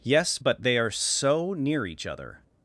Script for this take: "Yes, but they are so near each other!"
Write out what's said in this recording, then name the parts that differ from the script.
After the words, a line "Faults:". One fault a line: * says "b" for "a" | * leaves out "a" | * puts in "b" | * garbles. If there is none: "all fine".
"Yes, but they are so near each other!"
Faults:
all fine